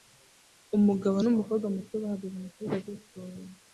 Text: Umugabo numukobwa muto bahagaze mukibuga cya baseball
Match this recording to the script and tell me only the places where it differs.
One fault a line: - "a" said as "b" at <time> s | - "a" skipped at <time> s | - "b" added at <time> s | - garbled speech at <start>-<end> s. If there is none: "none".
- "cya" skipped at 2.8 s